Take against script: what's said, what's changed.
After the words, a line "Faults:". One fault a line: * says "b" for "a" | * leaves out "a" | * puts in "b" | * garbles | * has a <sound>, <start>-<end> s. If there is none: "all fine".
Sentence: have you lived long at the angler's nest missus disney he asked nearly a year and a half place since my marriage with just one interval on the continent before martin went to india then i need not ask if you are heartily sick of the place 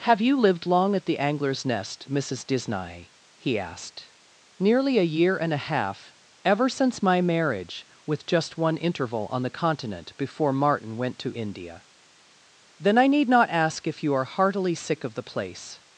have you lived long at the angler's nest missus disney he asked nearly a year and a half ever since my marriage with just one interval on the continent before martin went to india then i need not ask if you are heartily sick of the place
Faults:
* says "ever" for "place"